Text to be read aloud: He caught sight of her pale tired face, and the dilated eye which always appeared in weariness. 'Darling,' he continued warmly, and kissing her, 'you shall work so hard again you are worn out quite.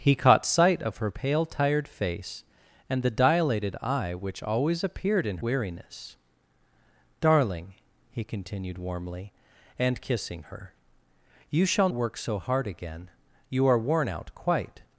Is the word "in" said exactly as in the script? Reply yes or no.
yes